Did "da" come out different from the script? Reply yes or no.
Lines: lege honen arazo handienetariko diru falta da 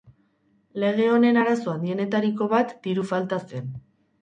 yes